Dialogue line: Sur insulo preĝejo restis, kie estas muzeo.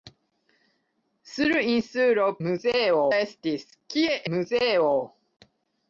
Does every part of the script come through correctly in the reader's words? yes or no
no